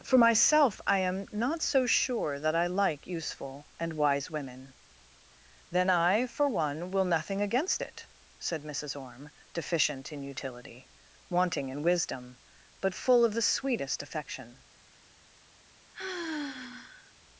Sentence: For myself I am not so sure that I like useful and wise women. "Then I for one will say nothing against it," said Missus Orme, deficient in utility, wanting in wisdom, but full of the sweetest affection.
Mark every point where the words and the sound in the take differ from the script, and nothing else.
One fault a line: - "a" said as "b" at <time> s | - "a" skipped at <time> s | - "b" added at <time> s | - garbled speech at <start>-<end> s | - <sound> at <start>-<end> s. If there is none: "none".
- "say" skipped at 7.0 s
- sigh at 15.9-17.1 s